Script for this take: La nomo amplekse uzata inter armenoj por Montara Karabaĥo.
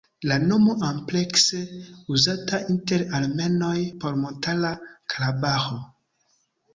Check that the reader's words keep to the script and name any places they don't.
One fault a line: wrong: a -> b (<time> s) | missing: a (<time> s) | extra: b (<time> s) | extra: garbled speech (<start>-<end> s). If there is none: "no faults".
no faults